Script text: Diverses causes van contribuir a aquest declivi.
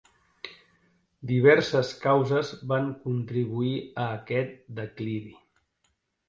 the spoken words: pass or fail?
pass